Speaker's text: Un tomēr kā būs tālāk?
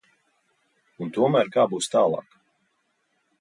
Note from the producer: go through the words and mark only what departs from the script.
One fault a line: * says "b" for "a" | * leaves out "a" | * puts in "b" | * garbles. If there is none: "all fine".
all fine